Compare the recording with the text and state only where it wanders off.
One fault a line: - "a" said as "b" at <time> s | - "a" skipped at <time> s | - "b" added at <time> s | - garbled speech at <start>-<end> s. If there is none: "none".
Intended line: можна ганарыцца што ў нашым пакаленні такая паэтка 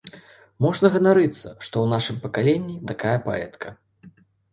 none